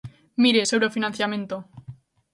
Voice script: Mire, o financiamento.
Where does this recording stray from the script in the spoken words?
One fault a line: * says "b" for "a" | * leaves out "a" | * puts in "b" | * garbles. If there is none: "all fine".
* puts in "sobre"